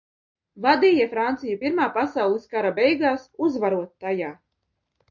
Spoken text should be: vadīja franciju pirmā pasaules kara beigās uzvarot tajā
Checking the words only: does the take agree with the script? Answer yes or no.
yes